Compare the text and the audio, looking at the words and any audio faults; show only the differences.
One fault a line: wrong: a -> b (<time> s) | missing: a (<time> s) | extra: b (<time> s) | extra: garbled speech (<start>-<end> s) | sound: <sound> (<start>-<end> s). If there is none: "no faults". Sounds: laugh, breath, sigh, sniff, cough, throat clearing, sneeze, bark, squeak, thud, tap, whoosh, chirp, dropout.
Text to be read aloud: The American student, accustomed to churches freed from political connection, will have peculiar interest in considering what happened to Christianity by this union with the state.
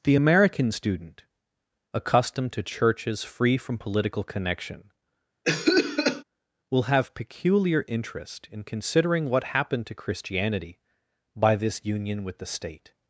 wrong: freed -> free (3.2 s)
sound: cough (5.4-6.2 s)